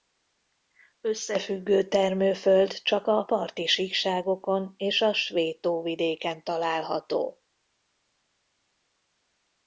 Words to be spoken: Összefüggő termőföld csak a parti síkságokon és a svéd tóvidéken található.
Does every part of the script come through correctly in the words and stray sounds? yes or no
yes